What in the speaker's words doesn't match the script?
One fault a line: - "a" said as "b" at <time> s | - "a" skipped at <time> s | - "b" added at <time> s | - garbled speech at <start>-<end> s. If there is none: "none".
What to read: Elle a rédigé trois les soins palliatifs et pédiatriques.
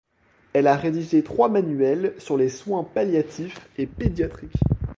- "manuels sur" added at 1.5 s